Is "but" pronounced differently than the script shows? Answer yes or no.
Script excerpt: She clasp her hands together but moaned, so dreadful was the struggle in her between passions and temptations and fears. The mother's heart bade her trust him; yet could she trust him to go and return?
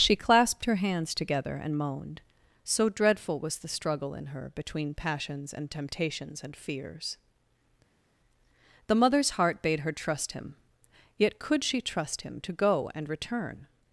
yes